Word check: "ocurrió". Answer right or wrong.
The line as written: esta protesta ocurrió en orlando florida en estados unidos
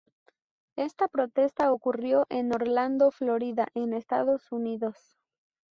right